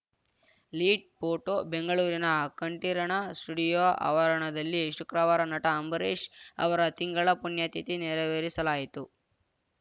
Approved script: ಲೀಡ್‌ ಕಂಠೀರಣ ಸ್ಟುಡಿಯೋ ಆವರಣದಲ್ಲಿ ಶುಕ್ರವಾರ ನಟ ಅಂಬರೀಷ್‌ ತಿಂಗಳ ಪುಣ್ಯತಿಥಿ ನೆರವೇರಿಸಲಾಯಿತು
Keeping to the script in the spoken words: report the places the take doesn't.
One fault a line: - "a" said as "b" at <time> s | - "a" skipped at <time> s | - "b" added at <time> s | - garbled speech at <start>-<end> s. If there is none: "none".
- "ಫೋಟೋ ಬೆಂಗಳೂರಿನ" added at 1.2 s
- "ಅವರ" added at 6.6 s